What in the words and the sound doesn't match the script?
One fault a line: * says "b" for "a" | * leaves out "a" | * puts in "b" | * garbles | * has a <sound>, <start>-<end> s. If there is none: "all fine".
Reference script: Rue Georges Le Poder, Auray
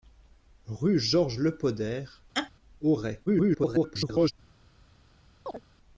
* has a laugh, 2.3-2.5 s
* garbles
* has a chirp, 5.5-5.6 s